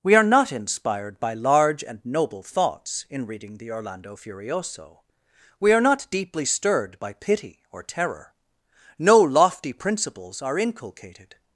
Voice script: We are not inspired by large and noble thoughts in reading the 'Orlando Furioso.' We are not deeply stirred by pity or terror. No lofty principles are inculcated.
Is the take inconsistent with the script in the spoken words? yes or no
no